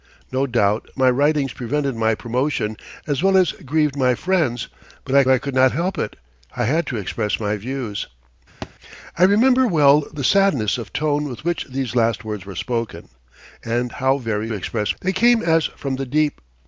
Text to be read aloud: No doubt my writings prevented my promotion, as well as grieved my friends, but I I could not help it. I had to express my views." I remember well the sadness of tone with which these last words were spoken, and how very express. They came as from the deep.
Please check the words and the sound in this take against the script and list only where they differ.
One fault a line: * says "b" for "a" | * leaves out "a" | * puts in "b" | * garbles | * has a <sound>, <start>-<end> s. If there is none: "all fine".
* has a thud, 8.6-8.7 s